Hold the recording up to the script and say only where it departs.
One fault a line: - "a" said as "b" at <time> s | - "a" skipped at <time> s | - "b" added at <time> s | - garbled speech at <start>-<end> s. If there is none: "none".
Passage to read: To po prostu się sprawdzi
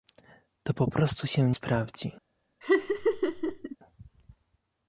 none